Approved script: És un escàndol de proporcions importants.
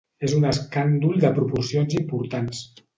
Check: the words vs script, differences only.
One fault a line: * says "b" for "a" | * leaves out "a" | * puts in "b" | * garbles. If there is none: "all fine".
all fine